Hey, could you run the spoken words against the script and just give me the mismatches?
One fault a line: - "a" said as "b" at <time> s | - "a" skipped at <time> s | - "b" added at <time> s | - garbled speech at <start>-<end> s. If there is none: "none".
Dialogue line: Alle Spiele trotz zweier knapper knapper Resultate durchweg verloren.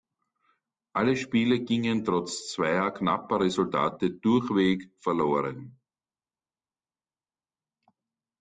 - "gingen" added at 1.6 s
- "knapper" skipped at 3.4 s